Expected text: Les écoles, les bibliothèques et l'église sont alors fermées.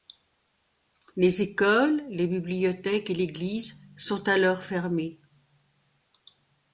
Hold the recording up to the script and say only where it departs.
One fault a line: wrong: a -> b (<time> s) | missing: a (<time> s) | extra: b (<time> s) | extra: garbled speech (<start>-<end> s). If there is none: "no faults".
no faults